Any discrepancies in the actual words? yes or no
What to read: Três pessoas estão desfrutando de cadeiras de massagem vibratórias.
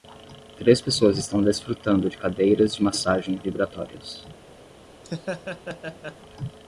no